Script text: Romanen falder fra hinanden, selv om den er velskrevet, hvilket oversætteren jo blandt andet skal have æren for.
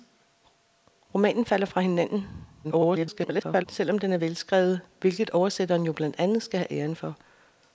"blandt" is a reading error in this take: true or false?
false